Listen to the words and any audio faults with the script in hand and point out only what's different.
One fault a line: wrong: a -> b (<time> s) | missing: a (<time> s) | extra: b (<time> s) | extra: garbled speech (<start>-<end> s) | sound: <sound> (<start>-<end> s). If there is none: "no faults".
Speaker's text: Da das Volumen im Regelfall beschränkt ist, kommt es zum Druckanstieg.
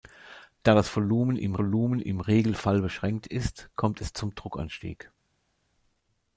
extra: Volumen im (1.6 s)